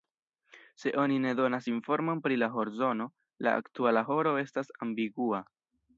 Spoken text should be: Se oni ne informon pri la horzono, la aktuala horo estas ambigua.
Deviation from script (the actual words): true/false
true